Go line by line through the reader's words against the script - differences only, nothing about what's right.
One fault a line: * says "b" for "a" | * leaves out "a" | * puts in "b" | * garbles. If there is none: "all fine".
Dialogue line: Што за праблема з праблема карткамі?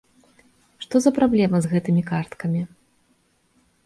* says "гэтымі" for "праблема"